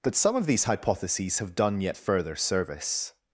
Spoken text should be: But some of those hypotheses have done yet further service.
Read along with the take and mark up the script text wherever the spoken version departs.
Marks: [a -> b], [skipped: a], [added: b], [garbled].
But some of [those -> these] hypotheses have done yet further service.